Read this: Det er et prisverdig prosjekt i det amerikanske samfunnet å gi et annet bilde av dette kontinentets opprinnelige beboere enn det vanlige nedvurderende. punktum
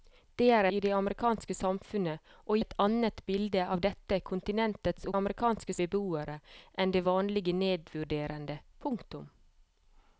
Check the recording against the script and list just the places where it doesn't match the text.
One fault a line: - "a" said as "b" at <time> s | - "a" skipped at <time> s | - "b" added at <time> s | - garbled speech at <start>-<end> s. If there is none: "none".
- "et prisverdig prosjekt" skipped at 0.7 s
- "gi" skipped at 2.6 s
- "opprinnelige" said as "amerikanske" at 5.2 s